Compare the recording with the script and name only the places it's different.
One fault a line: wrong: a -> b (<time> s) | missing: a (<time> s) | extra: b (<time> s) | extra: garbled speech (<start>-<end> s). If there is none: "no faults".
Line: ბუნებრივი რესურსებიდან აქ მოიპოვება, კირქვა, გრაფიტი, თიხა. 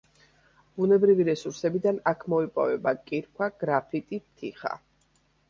no faults